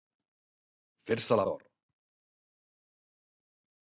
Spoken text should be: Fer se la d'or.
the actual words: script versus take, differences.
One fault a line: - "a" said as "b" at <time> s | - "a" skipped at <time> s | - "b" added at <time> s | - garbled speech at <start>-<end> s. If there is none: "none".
none